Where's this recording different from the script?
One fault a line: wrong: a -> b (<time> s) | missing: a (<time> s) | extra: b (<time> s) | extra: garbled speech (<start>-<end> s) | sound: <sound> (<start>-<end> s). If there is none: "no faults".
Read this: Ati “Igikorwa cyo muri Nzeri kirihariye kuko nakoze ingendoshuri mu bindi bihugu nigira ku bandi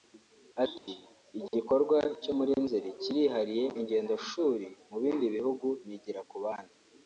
sound: dropout (0.8-0.9 s)
missing: kuko nakoze (3.6 s)